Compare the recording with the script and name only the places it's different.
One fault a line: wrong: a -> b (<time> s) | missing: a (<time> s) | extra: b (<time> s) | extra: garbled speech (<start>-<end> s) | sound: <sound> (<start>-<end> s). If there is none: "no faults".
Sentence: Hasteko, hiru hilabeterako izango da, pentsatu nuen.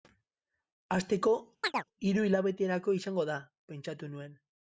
sound: chirp (1.6-1.8 s)